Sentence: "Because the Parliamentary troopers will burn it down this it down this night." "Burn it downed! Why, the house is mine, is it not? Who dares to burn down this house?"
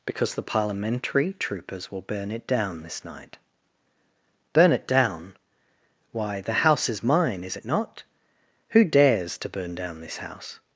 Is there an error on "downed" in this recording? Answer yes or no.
yes